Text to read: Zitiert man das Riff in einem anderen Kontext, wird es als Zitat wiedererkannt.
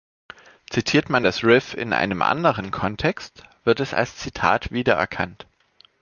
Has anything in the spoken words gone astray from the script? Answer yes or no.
no